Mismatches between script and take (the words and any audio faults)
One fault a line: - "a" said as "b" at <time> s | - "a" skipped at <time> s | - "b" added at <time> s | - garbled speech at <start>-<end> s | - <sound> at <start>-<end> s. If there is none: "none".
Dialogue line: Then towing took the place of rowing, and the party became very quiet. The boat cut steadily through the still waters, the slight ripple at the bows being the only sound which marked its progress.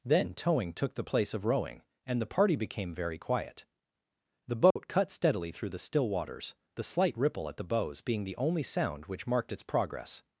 - dropout at 4.7-4.8 s